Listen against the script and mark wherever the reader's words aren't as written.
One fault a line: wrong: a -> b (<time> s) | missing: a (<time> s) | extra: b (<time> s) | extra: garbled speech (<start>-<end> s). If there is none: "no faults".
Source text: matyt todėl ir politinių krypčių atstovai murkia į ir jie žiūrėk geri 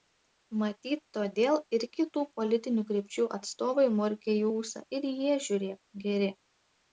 extra: kitų (2.0 s)
extra: ūsą (4.5 s)